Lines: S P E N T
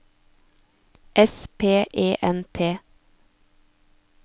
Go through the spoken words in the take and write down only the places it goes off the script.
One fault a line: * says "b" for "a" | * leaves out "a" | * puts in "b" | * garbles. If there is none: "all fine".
all fine